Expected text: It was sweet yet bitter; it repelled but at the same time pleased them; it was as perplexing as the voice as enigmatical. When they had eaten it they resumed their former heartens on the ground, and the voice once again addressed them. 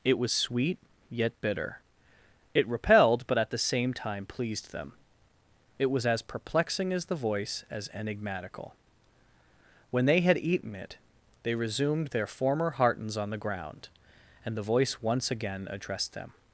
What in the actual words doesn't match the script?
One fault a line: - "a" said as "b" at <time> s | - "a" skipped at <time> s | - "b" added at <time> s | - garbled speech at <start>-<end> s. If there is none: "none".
none